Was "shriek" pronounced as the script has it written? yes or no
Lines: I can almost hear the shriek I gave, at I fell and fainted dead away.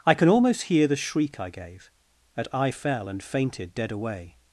yes